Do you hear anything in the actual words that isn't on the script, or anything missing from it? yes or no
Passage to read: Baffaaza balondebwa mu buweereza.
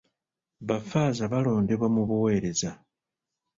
no